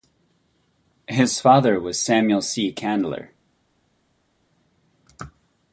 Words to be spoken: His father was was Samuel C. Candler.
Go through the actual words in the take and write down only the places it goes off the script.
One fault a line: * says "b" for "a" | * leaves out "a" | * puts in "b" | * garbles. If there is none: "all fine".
* leaves out "was"